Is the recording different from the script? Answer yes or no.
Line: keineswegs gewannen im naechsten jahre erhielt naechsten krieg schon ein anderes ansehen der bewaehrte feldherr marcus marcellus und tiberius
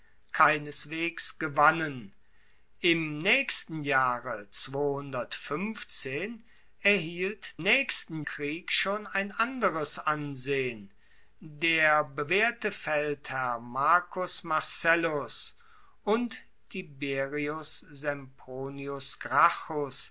no